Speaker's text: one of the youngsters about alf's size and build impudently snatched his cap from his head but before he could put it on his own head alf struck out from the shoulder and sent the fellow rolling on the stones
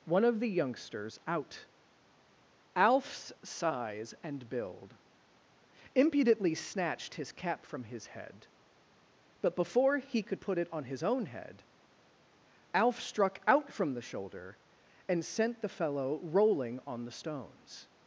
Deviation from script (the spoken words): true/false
true